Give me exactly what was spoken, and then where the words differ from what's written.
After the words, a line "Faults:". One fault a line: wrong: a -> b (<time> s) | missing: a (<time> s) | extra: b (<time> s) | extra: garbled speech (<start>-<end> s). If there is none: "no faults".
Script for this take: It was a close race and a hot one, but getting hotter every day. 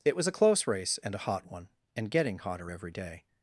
It was a close race and a hot one, and getting hotter every day.
Faults:
wrong: but -> and (1.9 s)